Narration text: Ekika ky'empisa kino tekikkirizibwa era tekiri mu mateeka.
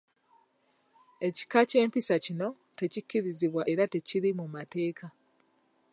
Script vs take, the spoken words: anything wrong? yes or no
no